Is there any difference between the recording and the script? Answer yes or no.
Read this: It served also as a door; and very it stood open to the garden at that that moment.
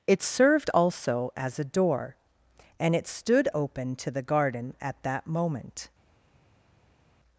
yes